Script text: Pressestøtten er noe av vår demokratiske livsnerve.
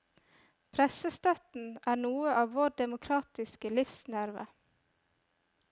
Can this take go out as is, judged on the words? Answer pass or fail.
pass